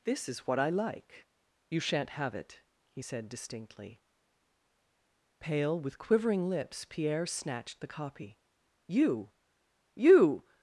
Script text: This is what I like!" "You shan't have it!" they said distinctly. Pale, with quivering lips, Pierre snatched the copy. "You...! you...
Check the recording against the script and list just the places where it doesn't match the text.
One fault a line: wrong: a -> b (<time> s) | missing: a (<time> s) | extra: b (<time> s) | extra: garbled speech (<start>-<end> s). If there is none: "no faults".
wrong: they -> he (2.8 s)